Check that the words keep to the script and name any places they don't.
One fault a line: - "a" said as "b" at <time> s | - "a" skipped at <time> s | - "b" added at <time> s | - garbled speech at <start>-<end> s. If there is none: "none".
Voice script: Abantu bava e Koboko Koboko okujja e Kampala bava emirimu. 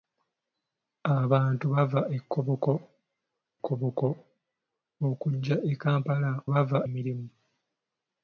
none